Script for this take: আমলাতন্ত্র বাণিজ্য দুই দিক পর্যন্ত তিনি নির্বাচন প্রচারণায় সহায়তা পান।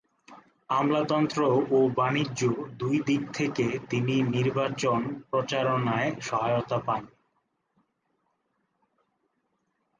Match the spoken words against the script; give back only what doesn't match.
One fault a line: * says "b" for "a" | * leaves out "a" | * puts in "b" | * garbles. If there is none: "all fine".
* puts in "ও"
* says "থেকে" for "পর্যন্ত"